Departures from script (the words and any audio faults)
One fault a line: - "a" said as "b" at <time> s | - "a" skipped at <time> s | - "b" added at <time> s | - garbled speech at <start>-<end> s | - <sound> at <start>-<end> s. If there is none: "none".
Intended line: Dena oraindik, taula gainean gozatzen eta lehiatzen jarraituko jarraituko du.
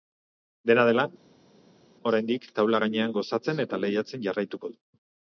- "dela" added at 0.9 s
- "jarraituko" skipped at 4.7 s